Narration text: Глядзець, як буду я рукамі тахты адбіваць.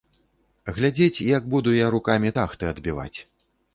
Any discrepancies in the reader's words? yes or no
no